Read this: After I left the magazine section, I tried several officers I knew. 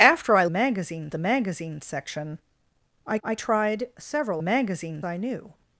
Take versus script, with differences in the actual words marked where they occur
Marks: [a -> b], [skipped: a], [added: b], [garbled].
After I [left -> magazine] the magazine section, I [added: I] tried several [officers -> magazine] I knew.